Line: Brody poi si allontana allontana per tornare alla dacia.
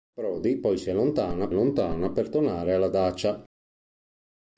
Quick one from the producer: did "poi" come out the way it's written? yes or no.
yes